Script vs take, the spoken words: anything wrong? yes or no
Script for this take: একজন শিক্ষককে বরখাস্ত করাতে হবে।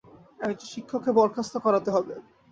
no